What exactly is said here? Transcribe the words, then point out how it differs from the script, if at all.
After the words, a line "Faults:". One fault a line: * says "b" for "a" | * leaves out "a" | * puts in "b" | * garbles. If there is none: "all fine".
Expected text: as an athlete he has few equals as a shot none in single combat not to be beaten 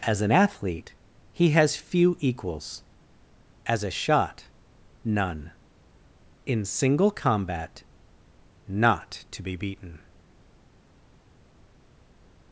as an athlete he has few equals as a shot none in single combat not to be beaten
Faults:
all fine